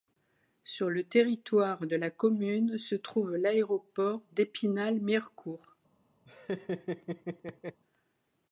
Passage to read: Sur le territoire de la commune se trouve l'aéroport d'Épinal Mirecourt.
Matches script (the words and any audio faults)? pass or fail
fail